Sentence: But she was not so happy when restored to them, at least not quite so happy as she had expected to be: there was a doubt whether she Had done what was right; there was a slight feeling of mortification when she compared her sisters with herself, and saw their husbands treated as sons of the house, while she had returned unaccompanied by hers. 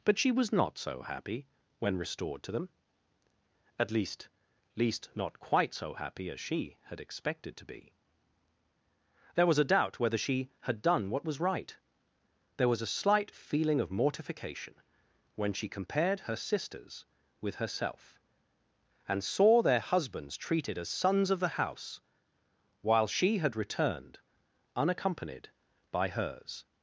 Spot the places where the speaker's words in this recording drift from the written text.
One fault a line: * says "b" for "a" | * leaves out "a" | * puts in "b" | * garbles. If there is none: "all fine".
* puts in "least"